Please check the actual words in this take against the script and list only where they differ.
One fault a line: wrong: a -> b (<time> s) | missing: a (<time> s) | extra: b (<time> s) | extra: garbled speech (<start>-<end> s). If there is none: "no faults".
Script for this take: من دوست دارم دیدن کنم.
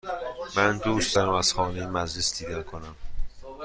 extra: از خانه مجلس (1.3 s)